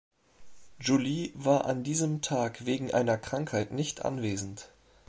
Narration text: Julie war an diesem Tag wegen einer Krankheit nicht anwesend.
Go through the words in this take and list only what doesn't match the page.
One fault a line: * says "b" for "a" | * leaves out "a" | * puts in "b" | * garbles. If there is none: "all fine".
all fine